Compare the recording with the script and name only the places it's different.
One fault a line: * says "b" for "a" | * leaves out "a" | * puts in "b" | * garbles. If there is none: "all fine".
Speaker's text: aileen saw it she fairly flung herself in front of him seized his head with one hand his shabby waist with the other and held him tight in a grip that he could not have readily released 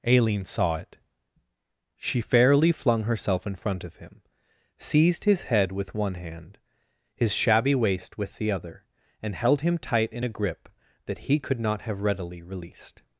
all fine